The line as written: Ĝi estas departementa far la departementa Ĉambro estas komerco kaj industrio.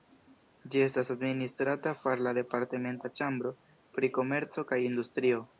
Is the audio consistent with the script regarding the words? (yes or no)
no